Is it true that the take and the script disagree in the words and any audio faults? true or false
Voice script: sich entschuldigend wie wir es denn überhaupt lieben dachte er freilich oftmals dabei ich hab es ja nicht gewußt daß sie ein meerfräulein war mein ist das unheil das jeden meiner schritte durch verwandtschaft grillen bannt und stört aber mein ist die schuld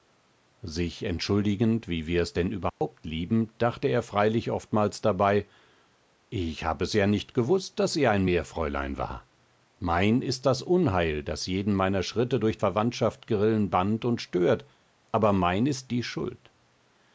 true